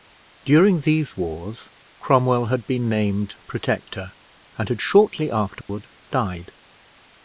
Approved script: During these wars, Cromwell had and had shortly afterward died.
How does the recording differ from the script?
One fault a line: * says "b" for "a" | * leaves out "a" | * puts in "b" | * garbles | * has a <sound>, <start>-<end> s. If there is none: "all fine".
* puts in "been named Protector"
* has a dropout, 5.6-5.7 s